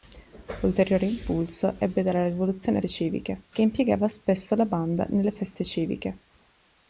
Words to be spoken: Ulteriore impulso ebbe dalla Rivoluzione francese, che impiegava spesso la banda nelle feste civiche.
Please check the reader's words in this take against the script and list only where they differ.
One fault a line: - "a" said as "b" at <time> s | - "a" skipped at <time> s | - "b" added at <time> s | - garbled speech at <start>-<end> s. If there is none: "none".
- "francese" said as "civiche" at 2.9 s